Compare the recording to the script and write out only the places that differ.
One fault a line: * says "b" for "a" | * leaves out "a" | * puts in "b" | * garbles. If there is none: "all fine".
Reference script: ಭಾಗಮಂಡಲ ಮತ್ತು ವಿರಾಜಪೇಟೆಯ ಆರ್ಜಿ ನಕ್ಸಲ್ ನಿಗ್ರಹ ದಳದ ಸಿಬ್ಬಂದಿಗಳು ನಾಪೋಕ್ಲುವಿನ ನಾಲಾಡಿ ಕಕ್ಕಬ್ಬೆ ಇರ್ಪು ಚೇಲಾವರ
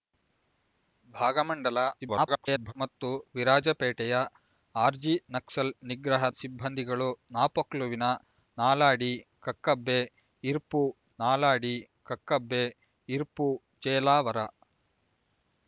* garbles
* leaves out "ದಳದ"
* puts in "ನಾಲಾಡಿ ಕಕ್ಕಬ್ಬೆ ಇರ್ಪು"